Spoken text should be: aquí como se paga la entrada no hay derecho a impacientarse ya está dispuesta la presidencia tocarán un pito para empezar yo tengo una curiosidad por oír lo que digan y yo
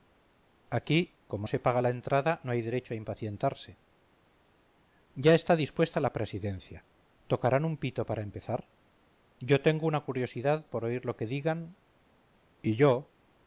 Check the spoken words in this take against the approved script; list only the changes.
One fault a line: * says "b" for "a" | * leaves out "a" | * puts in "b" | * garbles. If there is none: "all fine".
all fine